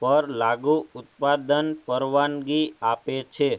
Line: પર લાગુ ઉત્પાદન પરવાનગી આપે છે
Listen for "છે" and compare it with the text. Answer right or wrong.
right